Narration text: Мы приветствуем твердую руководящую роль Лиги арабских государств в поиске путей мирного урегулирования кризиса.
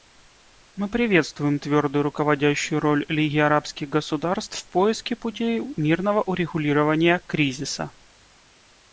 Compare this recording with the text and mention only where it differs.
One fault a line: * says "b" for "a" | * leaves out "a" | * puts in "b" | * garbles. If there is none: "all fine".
all fine